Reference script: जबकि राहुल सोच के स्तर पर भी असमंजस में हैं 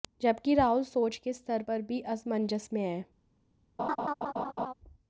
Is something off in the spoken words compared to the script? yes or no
no